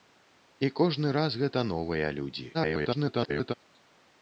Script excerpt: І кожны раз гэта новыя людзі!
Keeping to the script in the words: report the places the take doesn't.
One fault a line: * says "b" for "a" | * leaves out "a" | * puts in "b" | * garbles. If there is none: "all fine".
* garbles